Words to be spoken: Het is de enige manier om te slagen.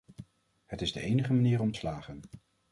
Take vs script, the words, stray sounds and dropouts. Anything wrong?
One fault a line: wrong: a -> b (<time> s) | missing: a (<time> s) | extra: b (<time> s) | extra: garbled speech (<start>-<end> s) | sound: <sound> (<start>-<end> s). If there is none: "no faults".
missing: te (1.7 s)